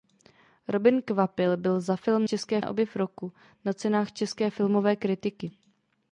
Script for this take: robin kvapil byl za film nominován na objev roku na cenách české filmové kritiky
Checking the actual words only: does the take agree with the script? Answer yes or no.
no